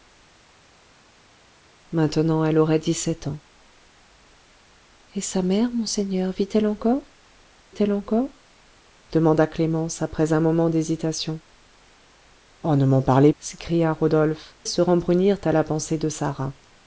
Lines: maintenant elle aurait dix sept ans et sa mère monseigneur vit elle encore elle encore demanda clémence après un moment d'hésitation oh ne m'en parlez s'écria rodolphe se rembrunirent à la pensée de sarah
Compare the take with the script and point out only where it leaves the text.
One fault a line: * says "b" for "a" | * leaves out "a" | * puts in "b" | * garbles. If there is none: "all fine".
all fine